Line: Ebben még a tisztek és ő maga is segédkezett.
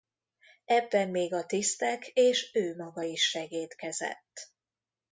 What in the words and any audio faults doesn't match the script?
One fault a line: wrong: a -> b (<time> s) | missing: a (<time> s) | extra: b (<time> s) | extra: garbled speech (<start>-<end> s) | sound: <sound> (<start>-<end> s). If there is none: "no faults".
no faults